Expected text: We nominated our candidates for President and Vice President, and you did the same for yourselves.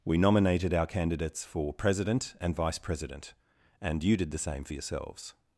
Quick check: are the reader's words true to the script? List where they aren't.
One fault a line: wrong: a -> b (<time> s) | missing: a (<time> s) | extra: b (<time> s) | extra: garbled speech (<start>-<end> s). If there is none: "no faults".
no faults